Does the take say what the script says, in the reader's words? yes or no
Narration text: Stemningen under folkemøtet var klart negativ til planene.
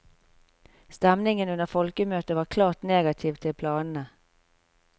yes